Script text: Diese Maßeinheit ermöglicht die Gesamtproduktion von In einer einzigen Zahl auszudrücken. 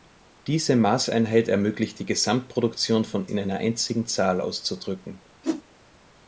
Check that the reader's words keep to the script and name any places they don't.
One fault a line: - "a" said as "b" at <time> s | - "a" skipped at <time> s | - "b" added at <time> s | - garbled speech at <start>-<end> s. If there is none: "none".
none